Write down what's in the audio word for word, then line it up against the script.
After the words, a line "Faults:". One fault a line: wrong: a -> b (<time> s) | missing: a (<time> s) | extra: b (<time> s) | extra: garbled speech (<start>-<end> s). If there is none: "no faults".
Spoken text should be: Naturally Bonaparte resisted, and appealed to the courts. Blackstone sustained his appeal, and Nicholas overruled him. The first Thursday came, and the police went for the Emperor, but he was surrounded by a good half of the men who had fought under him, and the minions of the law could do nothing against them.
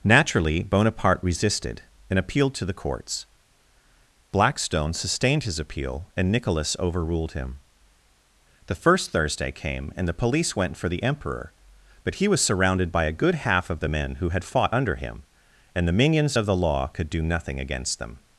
Naturally Bonaparte resisted, and appealed to the courts. Blackstone sustained his appeal, and Nicholas overruled him. The first Thursday came, and the police went for the Emperor, but he was surrounded by a good half of the men who had fought under him, and the minions of the law could do nothing against them.
Faults:
no faults